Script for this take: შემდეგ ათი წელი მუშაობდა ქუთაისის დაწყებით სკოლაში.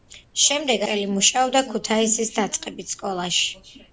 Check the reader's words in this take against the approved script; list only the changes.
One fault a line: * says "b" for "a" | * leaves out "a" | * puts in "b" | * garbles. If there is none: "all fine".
* leaves out "ათი"